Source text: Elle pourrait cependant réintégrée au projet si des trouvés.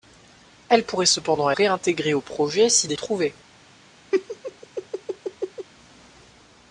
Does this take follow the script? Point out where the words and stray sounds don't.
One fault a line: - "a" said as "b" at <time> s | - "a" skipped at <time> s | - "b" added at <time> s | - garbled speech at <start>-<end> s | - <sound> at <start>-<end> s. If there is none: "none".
- laugh at 4.1-5.7 s